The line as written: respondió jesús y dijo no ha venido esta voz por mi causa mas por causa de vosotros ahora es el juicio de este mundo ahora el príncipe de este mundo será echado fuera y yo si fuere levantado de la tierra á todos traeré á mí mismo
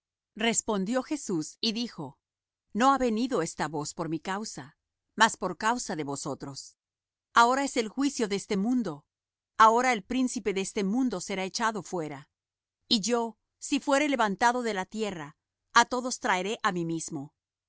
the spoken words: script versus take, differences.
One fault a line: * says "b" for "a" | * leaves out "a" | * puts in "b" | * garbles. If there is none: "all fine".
all fine